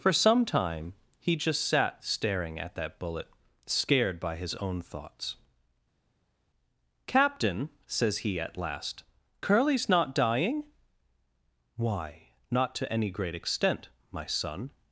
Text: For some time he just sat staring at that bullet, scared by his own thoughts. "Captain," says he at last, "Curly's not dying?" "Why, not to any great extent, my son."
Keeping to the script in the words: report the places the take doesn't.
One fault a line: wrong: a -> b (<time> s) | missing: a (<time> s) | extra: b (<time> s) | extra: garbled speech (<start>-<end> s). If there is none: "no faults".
no faults